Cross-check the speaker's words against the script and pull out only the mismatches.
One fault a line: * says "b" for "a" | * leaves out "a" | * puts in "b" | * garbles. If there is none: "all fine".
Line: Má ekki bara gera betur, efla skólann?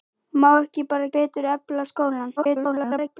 * leaves out "gera"
* garbles